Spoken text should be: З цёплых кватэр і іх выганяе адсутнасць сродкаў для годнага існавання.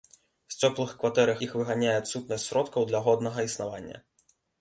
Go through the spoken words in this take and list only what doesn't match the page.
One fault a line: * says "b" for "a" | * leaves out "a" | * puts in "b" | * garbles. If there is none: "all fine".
all fine